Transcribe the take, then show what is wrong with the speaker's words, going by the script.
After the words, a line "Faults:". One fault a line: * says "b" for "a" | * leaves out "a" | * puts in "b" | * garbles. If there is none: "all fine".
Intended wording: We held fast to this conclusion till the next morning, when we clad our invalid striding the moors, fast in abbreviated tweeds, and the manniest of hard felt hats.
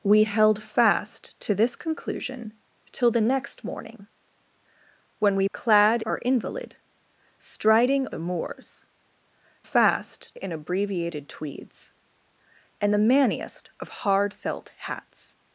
We held fast to this conclusion till the next morning, when we clad our invalid striding the moors, fast in abbreviated tweeds, and the manniest of hard felt hats.
Faults:
all fine